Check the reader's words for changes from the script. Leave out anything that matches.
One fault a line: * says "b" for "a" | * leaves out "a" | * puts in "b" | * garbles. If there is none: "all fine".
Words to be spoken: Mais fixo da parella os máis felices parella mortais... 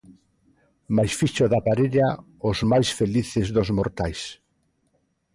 * says "dos" for "parella"